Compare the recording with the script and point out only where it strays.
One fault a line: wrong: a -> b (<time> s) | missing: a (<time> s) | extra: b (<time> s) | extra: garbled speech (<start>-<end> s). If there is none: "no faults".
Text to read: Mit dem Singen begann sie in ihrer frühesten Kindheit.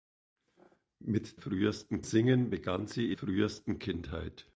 wrong: dem -> frühesten (1.3 s)
missing: in ihrer (3.1 s)